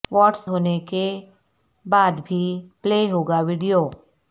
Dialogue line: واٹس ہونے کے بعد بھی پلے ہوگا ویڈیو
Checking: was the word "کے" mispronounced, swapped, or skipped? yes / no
no